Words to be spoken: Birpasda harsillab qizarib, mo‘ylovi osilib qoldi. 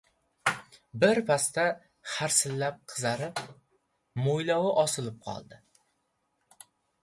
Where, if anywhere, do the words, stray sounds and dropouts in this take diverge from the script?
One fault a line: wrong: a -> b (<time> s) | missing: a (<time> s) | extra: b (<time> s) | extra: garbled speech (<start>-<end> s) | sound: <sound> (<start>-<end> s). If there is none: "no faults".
no faults